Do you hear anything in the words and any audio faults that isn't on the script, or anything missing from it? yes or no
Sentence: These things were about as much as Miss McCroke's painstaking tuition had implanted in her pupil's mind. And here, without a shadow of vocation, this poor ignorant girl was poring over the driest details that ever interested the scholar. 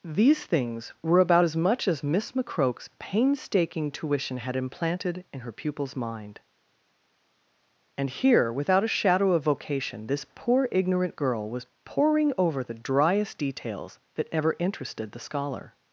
no